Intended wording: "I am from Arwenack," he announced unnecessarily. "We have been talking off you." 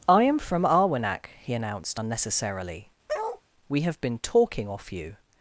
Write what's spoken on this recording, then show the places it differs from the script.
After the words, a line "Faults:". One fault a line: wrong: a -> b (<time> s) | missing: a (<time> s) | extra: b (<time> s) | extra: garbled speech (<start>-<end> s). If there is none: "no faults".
"I am from Arwenack," he announced unnecessarily. "We have been talking off you."
Faults:
no faults